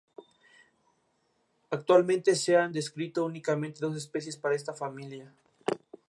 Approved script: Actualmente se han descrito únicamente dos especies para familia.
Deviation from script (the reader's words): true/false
true